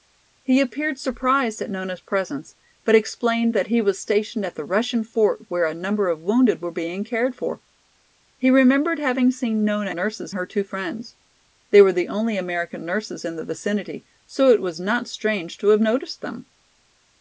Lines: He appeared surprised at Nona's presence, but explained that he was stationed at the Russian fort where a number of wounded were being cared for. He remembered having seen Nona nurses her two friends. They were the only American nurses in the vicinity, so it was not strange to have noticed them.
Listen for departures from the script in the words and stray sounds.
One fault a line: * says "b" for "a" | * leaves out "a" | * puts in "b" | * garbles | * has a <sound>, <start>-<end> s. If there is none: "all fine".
all fine